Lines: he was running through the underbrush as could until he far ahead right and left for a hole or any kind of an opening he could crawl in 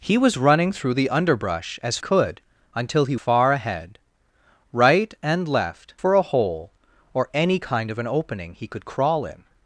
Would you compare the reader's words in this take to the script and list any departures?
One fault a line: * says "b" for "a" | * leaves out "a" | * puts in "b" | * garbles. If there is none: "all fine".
all fine